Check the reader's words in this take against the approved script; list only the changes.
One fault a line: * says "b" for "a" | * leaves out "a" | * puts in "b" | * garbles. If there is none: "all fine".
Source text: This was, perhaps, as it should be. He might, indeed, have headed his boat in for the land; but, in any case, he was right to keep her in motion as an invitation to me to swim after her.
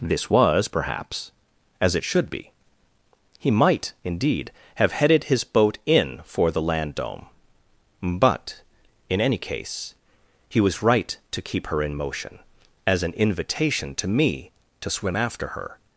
* puts in "dome"